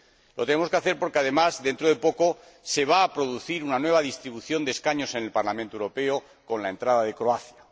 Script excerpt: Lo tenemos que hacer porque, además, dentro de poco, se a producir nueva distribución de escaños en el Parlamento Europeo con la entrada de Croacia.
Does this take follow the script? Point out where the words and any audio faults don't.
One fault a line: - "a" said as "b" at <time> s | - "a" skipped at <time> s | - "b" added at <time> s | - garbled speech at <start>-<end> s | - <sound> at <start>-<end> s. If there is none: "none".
- "va" added at 2.9 s
- "una" added at 3.6 s